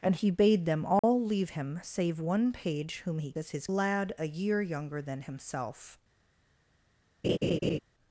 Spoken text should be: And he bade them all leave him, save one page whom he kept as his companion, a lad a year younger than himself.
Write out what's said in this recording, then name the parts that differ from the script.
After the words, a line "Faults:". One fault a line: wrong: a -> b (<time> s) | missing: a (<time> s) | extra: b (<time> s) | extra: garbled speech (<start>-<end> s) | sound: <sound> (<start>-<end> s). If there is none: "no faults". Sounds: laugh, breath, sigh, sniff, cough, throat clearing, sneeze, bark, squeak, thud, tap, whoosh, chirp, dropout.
And he bade them all leave him, save one page whom he as his lad a year younger than himself.
Faults:
sound: dropout (1.0-1.0 s)
missing: kept (3.3 s)
missing: companion a (3.7 s)
sound: laugh (7.2-7.8 s)